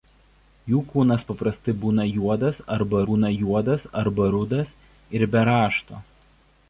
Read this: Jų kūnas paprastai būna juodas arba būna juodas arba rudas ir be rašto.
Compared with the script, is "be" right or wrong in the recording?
right